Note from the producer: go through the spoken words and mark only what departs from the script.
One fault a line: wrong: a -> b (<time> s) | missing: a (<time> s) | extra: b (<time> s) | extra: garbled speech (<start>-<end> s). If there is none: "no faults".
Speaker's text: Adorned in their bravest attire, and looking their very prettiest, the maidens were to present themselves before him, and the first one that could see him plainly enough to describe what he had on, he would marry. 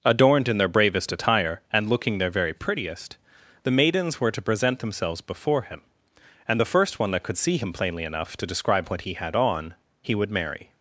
no faults